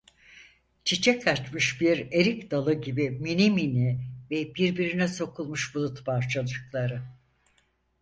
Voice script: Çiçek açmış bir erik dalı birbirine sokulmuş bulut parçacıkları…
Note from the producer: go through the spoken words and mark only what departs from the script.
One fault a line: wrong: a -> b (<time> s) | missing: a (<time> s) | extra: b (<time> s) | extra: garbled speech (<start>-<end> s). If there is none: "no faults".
extra: gibi minimini ve (2.7 s)